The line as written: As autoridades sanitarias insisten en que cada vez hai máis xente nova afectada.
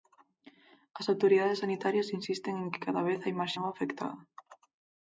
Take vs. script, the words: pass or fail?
fail